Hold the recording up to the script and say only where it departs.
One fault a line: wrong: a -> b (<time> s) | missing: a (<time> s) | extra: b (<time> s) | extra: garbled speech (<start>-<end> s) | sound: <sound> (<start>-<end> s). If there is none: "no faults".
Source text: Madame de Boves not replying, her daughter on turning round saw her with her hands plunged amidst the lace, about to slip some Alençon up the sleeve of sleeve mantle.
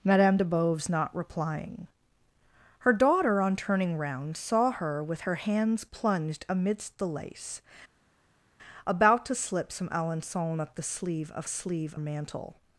no faults